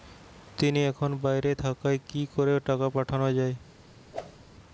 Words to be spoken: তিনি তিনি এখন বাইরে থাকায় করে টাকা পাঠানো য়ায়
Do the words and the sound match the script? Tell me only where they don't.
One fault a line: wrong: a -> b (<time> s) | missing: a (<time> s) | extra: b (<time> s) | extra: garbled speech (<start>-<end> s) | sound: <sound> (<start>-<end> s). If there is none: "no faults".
missing: তিনি (0.8 s)
extra: কি (2.1 s)
sound: whoosh (4.1-4.4 s)